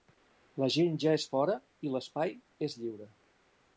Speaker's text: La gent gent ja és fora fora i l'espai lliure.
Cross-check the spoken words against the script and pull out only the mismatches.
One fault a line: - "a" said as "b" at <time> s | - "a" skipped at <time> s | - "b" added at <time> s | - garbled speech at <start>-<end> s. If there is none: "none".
- "gent" skipped at 0.9 s
- "fora" skipped at 1.6 s
- "és" added at 2.7 s